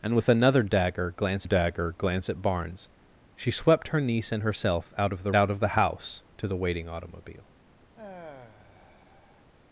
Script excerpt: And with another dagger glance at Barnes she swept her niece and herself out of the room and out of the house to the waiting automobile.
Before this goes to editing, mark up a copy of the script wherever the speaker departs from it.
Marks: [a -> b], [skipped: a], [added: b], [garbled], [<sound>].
And with another dagger glance [added: dagger glance] at Barnes she swept her niece and herself out of the [skipped: room and] out of the house to the waiting automobile. [sigh]